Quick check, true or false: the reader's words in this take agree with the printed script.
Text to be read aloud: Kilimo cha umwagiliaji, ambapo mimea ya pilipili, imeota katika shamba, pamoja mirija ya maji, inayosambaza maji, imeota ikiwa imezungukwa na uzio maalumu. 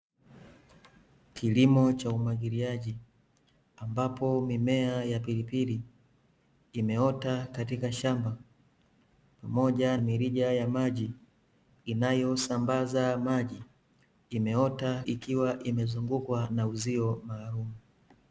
true